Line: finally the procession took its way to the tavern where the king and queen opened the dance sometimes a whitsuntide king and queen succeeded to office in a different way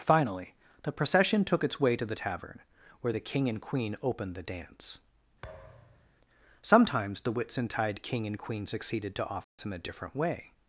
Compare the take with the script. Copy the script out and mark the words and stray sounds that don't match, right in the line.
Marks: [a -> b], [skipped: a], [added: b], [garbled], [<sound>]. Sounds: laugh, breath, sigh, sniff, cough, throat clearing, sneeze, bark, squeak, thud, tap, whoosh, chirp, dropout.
finally the procession took its way to the tavern where the king and queen opened the dance [thud] sometimes [a -> the] whitsuntide king and queen succeeded to office [dropout] in a different way